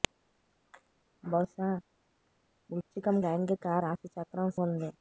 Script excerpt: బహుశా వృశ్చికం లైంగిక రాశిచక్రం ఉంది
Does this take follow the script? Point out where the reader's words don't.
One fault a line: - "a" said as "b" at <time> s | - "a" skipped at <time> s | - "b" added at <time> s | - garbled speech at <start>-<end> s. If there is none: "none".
none